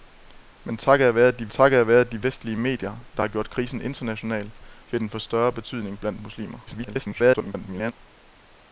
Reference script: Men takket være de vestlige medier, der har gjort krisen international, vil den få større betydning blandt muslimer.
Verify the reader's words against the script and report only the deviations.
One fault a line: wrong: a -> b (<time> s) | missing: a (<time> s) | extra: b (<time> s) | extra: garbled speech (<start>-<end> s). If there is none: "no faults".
extra: takket være de (1.5 s)
extra: garbled speech (6.7-7.9 s)